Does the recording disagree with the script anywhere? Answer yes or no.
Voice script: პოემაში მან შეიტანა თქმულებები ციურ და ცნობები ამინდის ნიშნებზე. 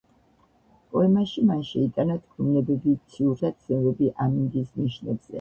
no